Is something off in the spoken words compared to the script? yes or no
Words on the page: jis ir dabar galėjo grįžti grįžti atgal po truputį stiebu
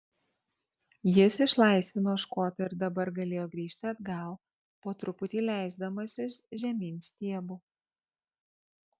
yes